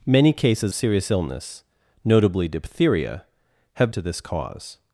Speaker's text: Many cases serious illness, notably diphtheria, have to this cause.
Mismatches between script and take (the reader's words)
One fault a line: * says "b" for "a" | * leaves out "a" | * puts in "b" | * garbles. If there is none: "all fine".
all fine